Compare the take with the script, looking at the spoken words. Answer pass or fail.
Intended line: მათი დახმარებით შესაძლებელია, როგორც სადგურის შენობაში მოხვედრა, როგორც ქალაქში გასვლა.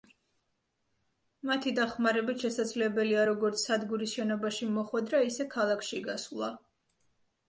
fail